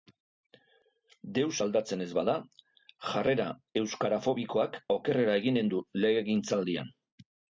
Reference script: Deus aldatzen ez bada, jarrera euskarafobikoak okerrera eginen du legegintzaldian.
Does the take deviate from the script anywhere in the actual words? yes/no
no